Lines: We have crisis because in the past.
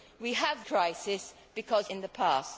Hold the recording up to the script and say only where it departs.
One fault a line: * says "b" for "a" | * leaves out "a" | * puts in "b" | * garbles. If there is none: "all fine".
all fine